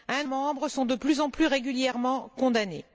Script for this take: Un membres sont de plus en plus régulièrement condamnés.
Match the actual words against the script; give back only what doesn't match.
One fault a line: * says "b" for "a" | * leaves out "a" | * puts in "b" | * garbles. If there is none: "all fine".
all fine